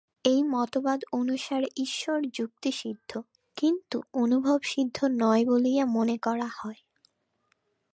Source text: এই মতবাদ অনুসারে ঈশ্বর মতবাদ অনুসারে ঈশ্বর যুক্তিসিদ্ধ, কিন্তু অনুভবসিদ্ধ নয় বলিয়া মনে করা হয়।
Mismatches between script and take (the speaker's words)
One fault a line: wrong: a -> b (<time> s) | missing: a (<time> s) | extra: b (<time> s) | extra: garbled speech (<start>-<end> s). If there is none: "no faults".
missing: মতবাদ অনুসারে ঈশ্বর (2.2 s)